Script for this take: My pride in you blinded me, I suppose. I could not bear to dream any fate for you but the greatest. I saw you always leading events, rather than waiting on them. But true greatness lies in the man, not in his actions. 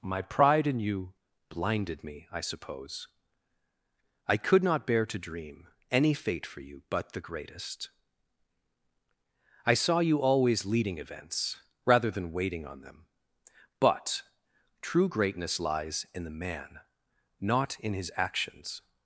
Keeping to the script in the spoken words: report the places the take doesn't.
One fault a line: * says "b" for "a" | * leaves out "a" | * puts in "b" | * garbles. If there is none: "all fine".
all fine